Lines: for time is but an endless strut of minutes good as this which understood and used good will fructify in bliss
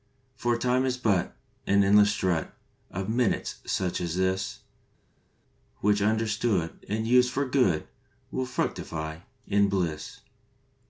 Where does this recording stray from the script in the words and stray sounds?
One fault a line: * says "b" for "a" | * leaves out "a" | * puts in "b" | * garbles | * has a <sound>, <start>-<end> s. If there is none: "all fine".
* says "such" for "good"
* puts in "for"